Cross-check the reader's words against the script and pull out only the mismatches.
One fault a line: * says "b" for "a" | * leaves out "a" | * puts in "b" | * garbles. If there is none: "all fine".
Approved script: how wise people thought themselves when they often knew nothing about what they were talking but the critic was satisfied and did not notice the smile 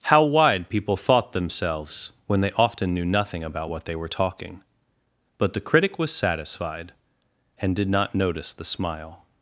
* says "wide" for "wise"